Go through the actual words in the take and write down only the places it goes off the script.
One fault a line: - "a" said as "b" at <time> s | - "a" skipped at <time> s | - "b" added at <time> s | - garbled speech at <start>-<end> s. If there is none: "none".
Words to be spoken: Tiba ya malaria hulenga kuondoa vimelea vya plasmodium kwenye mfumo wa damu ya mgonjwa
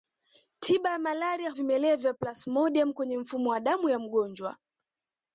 - "hulenga kuondoa" skipped at 1.5 s